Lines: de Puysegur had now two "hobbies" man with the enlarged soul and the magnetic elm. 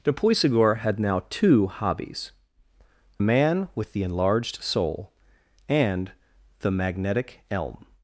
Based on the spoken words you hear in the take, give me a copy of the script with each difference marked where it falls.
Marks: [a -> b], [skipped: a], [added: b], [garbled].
de Puysegur had now two "hobbies" man with the enlarged soul and the magnetic elm.